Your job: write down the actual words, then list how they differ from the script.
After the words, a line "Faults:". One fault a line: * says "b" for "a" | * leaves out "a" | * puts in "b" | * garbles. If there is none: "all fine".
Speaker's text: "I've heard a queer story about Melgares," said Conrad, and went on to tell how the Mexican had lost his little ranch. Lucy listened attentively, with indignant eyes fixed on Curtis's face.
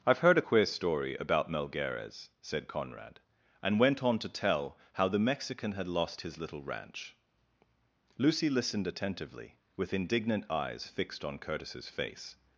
"I've heard a queer story about Melgares," said Conrad, and went on to tell how the Mexican had lost his little ranch. Lucy listened attentively, with indignant eyes fixed on Curtis's face.
Faults:
all fine